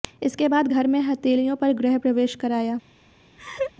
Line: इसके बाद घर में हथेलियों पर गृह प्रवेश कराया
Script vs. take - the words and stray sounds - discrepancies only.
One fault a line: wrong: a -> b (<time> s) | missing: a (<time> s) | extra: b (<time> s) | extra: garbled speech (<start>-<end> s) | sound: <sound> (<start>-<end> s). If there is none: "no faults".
sound: laugh (3.4-3.7 s)